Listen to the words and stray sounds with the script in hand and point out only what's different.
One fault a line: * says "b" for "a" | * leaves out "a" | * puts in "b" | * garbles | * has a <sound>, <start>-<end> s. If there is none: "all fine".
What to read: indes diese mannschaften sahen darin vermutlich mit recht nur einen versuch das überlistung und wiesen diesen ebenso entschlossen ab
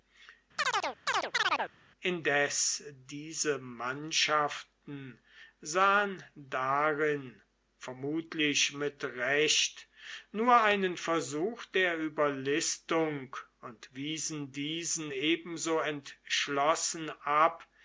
* has a chirp, 0.6-1.7 s
* says "der" for "das"